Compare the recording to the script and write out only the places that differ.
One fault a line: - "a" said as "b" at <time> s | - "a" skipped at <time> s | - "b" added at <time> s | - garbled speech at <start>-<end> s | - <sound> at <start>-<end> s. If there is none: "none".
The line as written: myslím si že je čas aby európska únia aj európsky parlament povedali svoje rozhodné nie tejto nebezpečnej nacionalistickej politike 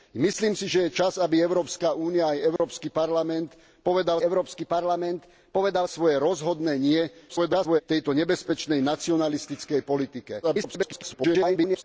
- dropout at 2.6-2.6 s
- "európsky parlament povedali" added at 4.2 s
- garbled speech at 7.3-7.8 s
- garbled speech at 10.4-11.8 s